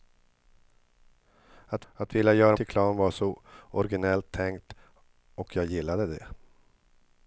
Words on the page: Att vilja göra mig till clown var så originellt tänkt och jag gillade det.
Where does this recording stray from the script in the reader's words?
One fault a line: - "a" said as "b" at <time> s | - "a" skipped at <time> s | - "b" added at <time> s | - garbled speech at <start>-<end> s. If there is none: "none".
- "att" added at 1.9 s
- "mig" skipped at 2.6 s